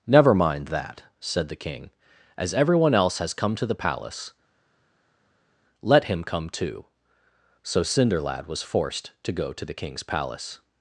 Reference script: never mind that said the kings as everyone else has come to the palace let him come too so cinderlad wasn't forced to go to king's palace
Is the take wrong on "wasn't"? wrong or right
wrong